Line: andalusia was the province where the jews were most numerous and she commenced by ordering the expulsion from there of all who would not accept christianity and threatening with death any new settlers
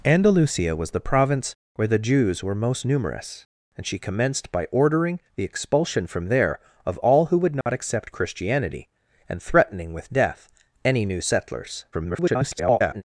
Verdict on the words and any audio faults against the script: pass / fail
fail